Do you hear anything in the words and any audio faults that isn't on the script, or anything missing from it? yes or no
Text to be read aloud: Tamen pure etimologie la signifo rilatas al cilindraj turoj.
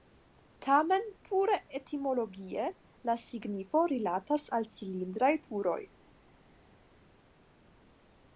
no